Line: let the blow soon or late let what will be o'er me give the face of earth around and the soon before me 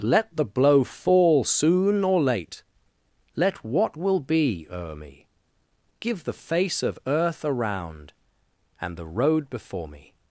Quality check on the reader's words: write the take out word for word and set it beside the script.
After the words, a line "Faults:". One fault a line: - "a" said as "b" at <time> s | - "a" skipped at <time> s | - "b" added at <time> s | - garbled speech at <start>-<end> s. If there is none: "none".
let the blow fall soon or late let what will be o'er me give the face of earth around and the road before me
Faults:
- "fall" added at 0.8 s
- "soon" said as "road" at 9.1 s